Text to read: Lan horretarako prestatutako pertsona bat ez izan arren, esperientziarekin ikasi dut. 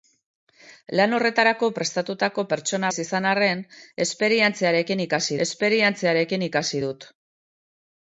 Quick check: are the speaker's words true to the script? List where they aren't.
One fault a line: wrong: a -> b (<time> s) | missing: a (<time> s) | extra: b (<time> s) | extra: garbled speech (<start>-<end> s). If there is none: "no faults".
missing: bat (2.9 s)
extra: esperientziarekin ikasi (5.5 s)